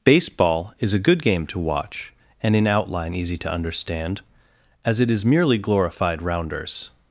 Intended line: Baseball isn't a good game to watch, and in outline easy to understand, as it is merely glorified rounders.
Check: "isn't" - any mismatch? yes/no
yes